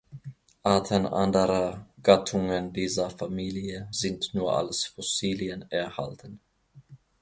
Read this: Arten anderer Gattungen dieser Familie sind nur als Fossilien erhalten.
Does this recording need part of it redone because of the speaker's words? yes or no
no